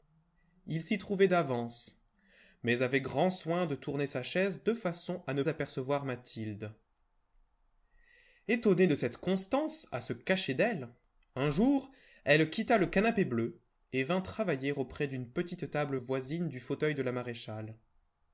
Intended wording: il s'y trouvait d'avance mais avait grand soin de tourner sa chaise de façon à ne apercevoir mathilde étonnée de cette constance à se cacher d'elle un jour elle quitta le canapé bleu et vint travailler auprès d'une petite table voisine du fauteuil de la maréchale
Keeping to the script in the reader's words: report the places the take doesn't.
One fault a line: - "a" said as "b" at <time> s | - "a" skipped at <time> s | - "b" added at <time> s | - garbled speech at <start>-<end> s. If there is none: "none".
none